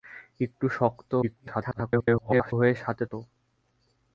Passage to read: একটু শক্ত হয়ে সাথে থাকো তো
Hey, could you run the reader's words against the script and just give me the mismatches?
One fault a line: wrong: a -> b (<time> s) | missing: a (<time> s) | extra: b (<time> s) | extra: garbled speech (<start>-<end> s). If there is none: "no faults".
extra: garbled speech (1.2-2.5 s)
missing: থাকো (3.0 s)